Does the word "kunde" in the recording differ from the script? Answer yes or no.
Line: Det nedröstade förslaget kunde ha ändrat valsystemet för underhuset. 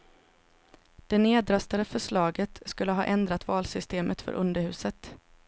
yes